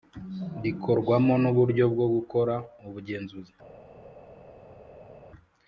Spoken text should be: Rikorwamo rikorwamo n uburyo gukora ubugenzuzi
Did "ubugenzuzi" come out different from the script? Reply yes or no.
no